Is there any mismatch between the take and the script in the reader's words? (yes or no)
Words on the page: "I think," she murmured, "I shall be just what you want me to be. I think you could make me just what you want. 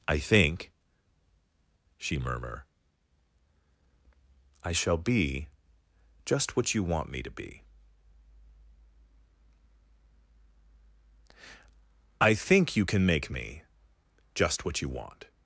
yes